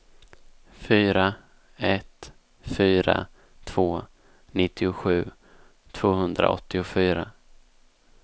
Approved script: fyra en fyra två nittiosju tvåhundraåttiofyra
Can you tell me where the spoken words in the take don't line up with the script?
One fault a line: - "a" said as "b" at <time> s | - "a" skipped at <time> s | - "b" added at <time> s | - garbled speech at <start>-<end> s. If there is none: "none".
- "en" said as "ett" at 1.8 s